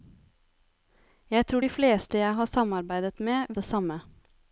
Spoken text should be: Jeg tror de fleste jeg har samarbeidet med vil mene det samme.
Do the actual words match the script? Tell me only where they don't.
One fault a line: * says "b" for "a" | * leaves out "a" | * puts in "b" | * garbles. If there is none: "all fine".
* leaves out "vil mene"